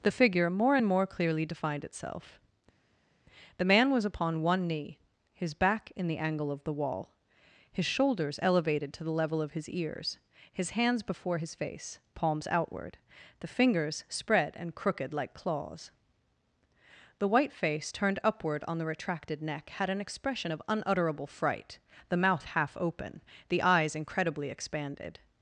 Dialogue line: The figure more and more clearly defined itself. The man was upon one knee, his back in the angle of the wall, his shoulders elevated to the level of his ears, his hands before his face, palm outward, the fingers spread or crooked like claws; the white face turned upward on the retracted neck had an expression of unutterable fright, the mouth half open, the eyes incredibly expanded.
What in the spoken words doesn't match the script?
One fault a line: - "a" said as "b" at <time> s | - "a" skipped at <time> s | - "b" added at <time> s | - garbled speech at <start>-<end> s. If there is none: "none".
- "palm" said as "palms" at 12.1 s
- "or" said as "and" at 14.5 s